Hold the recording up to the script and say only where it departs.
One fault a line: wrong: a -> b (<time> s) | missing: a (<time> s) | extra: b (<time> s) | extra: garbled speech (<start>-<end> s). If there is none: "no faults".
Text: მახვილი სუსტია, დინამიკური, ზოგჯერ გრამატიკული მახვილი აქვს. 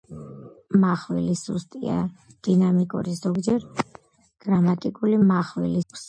no faults